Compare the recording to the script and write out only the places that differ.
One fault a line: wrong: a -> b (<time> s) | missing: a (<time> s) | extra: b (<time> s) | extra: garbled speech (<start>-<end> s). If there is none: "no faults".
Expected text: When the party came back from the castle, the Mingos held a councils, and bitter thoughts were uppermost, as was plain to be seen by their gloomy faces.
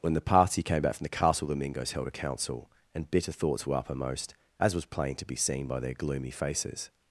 wrong: councils -> council (2.1 s)